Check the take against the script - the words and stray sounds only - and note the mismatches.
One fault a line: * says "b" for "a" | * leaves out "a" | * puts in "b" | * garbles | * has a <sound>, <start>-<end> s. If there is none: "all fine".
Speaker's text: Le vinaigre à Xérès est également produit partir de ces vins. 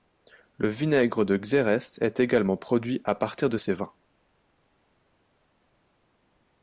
* says "de" for "à"
* puts in "à"